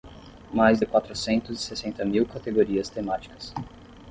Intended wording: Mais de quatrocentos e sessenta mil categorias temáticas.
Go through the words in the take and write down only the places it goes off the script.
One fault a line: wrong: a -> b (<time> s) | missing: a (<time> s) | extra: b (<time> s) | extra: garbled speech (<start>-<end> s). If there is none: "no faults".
no faults